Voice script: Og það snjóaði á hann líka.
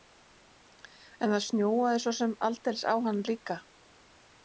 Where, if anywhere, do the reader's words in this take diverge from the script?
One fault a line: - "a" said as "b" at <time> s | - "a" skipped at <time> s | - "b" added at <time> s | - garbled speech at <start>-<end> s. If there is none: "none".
- "Og" said as "En" at 1.2 s
- "svo sem aldeilis" added at 2.1 s